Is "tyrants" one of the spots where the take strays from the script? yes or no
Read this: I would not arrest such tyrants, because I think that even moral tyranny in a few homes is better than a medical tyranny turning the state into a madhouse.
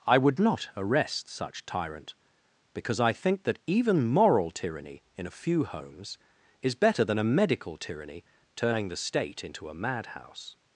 yes